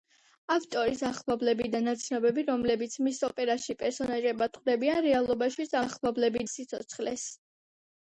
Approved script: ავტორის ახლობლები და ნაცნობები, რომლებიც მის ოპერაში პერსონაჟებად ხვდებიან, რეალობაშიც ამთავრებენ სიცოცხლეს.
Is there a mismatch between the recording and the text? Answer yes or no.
yes